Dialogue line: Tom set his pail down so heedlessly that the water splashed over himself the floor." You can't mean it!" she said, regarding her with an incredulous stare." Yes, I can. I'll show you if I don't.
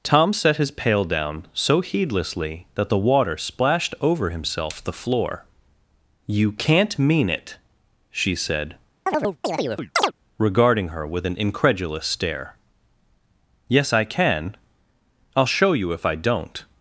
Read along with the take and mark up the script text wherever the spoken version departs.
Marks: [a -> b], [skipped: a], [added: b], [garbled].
Tom set his pail down so heedlessly that the water splashed over himself the floor." You can't mean it!" she said, regarding her with an incredulous stare." Yes, I can. I'll show you if I don't.